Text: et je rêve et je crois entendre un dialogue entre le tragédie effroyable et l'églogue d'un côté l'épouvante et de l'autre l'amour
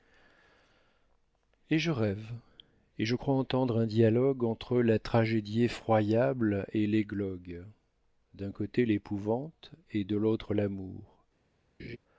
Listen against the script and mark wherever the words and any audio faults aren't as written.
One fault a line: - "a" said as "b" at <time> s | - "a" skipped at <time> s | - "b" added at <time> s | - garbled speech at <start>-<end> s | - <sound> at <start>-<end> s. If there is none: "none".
- "le" said as "la" at 4.8 s
- laugh at 11.8-12.0 s